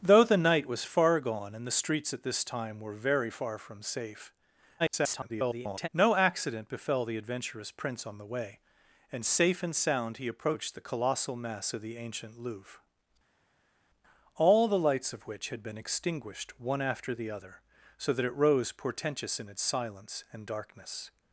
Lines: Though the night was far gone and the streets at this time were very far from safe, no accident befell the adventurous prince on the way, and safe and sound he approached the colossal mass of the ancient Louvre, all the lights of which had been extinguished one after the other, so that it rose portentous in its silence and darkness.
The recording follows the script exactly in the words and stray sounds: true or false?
false